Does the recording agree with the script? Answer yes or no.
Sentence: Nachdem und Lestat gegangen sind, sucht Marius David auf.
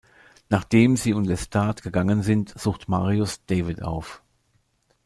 no